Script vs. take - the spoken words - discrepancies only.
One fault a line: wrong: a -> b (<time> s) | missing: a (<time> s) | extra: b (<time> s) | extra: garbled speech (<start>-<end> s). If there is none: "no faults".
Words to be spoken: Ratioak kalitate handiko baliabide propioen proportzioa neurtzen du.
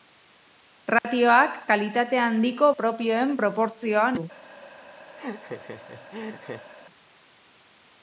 missing: baliabide (2.7 s)
missing: neurtzen (4.1 s)